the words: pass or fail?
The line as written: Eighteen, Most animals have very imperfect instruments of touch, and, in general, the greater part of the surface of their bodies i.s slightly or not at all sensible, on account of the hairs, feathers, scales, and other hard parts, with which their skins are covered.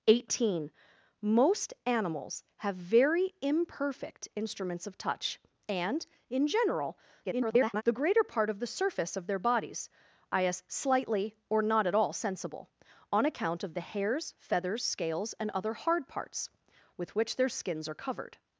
fail